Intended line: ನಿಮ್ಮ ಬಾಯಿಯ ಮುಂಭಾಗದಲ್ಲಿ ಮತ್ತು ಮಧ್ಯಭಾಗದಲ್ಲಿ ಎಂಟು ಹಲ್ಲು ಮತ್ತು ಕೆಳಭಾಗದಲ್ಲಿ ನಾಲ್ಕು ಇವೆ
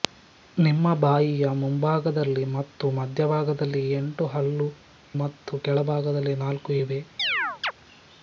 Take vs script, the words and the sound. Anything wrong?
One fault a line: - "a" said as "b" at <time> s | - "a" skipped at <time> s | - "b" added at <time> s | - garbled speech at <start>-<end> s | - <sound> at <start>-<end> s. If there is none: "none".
- chirp at 7.2-7.7 s